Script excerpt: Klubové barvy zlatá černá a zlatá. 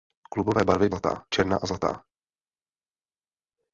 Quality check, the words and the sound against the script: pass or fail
pass